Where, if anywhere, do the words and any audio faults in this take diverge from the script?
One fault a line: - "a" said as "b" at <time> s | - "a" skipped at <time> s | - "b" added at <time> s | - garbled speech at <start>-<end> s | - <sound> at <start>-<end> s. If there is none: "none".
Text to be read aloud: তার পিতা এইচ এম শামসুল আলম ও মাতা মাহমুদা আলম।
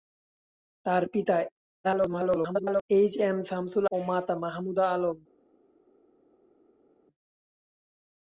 - garbled speech at 1.8-2.8 s
- "আলম" skipped at 3.9 s